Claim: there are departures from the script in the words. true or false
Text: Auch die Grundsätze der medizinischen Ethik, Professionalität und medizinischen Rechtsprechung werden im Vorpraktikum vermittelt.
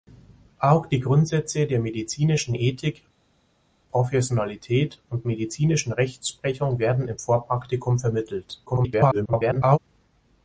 true